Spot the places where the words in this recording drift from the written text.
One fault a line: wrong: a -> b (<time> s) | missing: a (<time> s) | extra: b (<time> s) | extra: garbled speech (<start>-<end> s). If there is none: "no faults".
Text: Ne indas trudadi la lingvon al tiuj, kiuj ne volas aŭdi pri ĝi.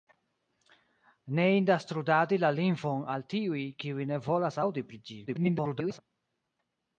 extra: garbled speech (5.3-6.0 s)